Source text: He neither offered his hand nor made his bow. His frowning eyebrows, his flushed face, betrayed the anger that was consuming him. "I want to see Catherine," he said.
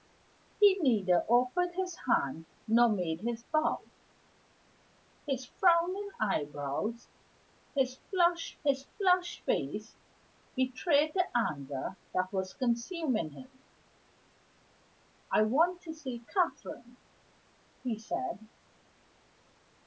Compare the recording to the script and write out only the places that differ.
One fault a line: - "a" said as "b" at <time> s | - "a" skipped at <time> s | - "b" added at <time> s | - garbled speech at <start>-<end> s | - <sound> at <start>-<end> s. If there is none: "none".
- "his flushed" added at 8.6 s